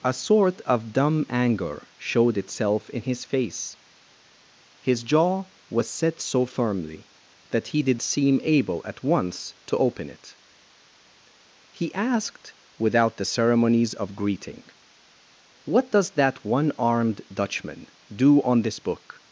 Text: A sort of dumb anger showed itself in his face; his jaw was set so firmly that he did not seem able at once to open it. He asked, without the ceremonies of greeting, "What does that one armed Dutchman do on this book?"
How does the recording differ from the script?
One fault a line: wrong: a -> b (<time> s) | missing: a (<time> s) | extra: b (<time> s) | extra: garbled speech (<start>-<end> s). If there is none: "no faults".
missing: not (8.0 s)